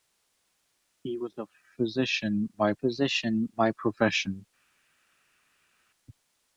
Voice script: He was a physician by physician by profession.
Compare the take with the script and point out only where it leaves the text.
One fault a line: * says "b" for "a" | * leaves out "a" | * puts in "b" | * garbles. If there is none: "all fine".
all fine